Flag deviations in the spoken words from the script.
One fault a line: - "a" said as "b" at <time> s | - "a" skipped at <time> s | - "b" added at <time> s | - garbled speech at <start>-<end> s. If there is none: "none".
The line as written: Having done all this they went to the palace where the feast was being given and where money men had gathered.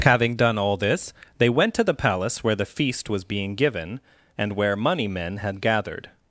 none